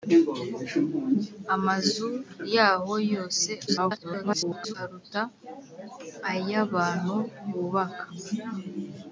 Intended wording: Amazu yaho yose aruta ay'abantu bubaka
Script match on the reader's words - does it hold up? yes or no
no